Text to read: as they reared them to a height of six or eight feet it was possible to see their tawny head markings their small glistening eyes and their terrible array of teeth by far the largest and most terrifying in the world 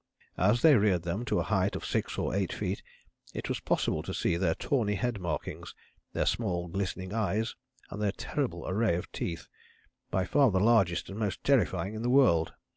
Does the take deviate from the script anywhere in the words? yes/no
no